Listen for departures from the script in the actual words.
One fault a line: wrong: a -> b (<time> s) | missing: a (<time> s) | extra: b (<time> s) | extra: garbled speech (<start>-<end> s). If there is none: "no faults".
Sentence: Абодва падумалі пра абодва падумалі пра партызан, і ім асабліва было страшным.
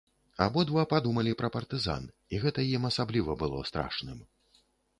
missing: абодва падумалі пра (1.5 s)
extra: гэта (2.5 s)